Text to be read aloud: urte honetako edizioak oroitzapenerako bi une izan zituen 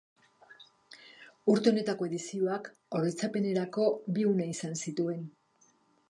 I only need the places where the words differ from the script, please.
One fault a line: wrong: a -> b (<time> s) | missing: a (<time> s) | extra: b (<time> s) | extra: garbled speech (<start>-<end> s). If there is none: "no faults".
no faults